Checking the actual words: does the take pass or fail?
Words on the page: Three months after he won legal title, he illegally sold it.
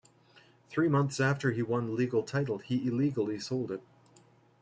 pass